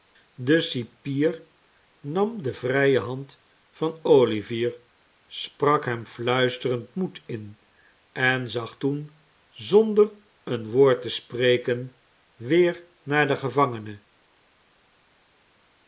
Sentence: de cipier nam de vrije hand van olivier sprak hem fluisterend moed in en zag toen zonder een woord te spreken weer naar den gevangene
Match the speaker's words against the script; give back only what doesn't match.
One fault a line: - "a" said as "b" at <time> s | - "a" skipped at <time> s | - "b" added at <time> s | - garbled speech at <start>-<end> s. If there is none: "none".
none